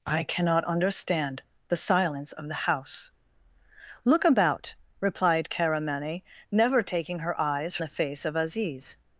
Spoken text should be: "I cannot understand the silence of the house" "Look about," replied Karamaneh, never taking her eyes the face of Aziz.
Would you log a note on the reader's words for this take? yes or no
no